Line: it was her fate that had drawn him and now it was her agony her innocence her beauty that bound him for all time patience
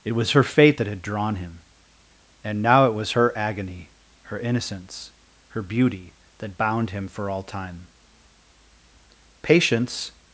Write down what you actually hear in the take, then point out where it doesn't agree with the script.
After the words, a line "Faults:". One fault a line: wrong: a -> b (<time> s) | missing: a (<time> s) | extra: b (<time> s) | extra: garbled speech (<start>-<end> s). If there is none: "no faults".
it was her fate that had drawn him and now it was her agony her innocence her beauty that bound him for all time patience
Faults:
no faults